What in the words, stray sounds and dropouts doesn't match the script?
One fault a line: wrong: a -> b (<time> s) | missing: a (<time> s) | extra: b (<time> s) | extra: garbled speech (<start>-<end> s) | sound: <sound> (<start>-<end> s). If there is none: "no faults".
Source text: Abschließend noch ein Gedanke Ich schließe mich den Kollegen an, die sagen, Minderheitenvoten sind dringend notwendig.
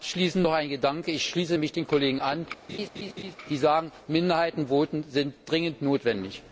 sound: laugh (2.7-3.4 s)